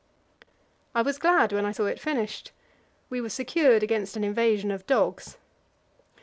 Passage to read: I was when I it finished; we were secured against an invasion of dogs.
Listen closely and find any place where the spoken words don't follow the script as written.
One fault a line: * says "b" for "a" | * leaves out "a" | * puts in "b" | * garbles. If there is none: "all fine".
* puts in "glad"
* puts in "saw"